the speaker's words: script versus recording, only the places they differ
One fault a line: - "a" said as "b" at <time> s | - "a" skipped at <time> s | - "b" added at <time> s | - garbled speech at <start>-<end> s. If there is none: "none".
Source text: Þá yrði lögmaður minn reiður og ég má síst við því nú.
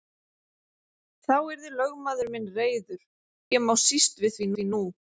- "og" skipped at 3.0 s
- "því" added at 4.5 s